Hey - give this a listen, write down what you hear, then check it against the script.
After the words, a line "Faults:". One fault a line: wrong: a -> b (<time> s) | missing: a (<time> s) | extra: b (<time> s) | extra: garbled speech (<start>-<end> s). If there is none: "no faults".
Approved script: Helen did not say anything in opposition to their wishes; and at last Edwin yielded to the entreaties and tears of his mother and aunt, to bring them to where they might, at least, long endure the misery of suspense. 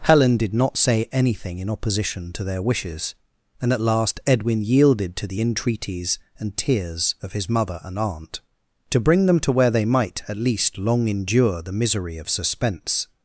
Helen did not say anything in opposition to their wishes; and at last Edwin yielded to the entreaties and tears of his mother and aunt, to bring them to where they might, at least, long endure the misery of suspense.
Faults:
no faults